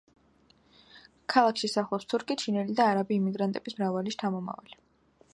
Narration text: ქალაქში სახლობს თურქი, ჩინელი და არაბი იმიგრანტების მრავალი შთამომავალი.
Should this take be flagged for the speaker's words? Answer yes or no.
no